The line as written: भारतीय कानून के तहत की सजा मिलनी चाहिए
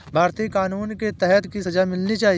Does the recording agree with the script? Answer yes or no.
yes